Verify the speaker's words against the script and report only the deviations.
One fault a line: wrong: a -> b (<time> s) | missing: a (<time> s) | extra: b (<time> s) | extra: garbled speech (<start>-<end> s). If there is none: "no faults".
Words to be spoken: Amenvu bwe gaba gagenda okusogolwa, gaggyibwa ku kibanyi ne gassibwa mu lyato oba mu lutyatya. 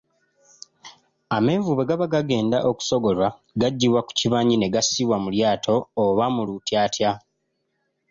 no faults